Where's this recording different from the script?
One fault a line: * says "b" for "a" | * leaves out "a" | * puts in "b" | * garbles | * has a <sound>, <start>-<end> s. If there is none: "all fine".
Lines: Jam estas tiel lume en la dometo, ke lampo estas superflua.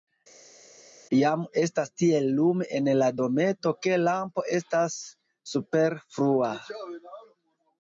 all fine